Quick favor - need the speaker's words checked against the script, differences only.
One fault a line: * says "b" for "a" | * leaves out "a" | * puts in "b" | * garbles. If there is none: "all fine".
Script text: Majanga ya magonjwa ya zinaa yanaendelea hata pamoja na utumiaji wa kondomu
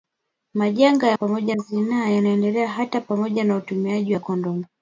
* says "pamoja" for "magonjwa"